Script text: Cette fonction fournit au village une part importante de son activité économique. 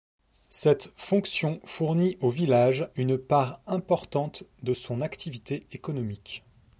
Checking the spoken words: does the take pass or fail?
pass